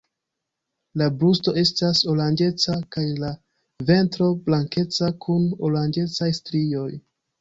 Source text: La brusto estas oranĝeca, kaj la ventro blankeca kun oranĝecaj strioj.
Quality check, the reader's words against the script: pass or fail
pass